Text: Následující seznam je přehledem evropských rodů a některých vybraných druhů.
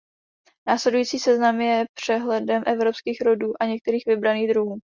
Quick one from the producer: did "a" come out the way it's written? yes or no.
yes